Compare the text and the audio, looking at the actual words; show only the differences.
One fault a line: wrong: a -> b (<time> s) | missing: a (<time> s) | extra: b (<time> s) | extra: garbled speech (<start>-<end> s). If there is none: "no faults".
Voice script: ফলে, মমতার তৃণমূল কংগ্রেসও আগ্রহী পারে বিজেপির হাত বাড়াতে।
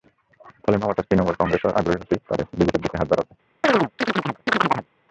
extra: হতেই (2.0 s)
extra: দিকে (2.8 s)